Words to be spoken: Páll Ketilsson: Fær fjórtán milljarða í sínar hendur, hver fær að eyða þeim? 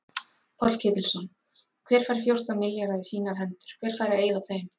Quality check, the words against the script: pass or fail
fail